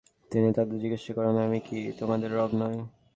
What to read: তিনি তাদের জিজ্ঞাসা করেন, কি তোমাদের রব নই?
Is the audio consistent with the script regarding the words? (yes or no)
no